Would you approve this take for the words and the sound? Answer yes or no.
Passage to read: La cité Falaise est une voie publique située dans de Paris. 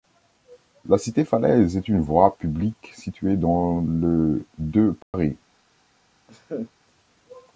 no